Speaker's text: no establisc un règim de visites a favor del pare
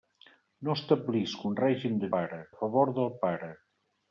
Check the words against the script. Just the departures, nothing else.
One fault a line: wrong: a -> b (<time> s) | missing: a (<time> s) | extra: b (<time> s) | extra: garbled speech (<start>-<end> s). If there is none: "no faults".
wrong: visites -> pare (2.2 s)